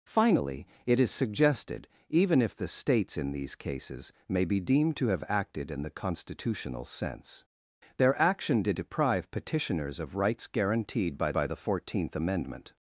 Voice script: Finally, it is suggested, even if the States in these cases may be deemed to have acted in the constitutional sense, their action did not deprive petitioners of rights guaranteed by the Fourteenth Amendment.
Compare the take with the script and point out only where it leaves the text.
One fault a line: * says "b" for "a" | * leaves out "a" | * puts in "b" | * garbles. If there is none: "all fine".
* leaves out "not"
* puts in "by"